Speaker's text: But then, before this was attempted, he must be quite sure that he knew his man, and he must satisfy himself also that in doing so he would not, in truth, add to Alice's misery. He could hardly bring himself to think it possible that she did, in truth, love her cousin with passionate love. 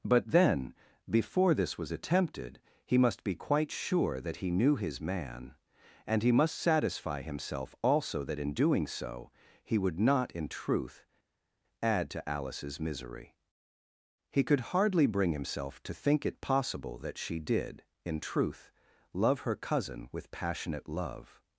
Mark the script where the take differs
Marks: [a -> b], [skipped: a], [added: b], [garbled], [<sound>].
But then, before this was attempted, he must be quite sure that he knew his man, and he must satisfy himself also that in doing so he would not, in truth, add to Alice's misery. He could hardly bring himself to think it possible that she did, in truth, love her cousin with passionate love.